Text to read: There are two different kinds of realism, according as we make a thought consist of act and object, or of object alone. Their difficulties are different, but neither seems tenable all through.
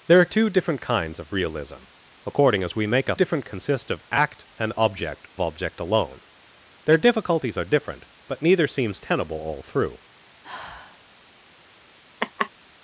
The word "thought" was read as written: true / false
false